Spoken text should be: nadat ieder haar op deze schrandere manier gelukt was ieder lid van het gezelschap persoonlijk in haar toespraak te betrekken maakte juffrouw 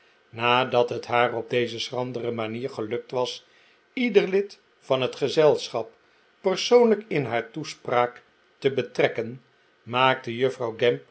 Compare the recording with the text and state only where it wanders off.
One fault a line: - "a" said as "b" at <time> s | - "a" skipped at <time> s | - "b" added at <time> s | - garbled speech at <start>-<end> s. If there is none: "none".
- "ieder" said as "het" at 0.9 s